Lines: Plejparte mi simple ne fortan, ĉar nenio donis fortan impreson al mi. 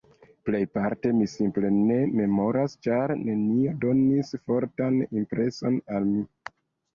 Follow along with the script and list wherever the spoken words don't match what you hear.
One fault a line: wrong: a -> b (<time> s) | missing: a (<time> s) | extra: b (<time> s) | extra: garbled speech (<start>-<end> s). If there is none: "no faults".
wrong: fortan -> memoras (2.2 s)